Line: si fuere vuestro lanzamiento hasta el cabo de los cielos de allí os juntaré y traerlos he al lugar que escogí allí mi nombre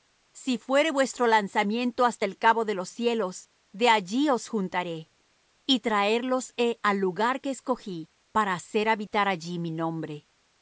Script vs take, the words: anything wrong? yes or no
yes